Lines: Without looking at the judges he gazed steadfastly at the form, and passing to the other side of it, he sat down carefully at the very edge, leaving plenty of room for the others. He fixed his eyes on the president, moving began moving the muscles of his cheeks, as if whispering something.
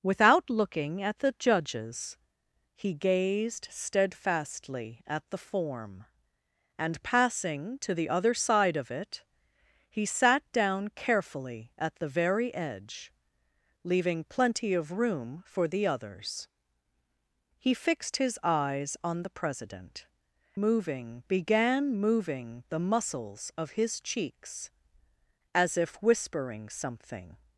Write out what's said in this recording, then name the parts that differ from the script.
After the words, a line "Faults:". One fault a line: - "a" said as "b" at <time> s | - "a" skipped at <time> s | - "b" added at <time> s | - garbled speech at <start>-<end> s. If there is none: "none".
Without looking at the judges he gazed steadfastly at the form, and passing to the other side of it, he sat down carefully at the very edge, leaving plenty of room for the others. He fixed his eyes on the president, moving began moving the muscles of his cheeks, as if whispering something.
Faults:
none